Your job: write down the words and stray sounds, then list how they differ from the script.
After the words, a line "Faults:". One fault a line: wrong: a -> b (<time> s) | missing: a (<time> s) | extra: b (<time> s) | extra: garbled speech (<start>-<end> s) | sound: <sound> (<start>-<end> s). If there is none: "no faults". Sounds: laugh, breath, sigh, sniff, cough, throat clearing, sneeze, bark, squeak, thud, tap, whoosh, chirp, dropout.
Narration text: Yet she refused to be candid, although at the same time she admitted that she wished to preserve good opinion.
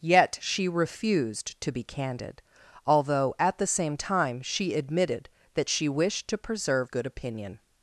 Yet she refused to be candid, although at the same time she admitted that she wished to preserve good opinion.
Faults:
no faults